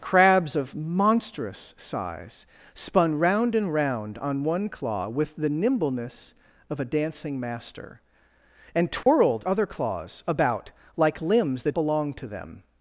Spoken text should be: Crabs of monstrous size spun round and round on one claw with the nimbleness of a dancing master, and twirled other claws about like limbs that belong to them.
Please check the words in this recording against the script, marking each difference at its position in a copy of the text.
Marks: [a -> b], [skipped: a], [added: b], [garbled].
Crabs of monstrous size spun round and round on one claw with the nimbleness of a dancing master, and twirled other claws about like limbs that belong to them.